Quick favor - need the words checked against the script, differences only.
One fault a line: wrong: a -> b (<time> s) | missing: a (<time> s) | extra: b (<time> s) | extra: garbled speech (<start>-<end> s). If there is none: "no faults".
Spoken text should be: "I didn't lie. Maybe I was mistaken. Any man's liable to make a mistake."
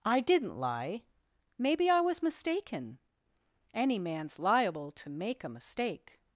no faults